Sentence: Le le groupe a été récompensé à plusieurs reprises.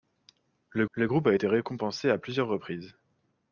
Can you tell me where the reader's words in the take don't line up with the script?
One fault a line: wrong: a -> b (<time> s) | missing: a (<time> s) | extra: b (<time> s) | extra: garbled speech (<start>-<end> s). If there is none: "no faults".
no faults